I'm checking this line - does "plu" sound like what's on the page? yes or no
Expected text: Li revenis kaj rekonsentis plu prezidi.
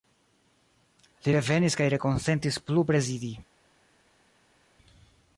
yes